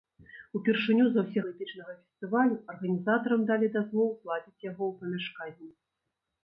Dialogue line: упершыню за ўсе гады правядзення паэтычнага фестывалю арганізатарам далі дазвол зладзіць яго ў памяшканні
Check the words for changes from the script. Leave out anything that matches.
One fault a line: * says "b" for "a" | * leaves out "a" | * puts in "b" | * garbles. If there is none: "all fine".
* leaves out "гады правядзення"